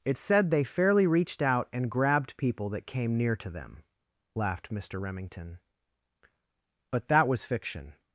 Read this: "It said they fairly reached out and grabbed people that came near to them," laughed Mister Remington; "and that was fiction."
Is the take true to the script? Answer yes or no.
no